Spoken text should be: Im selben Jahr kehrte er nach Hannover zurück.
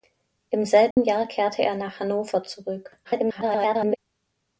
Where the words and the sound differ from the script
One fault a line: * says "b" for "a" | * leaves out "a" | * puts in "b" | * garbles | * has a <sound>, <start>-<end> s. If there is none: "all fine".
* has a dropout, 0.9-1.0 s
* garbles